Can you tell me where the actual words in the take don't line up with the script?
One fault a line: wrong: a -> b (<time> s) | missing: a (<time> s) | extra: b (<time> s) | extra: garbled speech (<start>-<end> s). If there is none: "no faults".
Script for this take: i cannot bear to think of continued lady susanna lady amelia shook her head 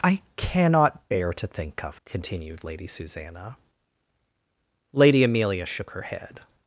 no faults